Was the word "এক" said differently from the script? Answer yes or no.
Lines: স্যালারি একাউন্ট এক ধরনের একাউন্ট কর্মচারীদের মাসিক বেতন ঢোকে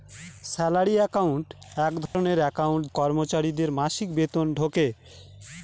no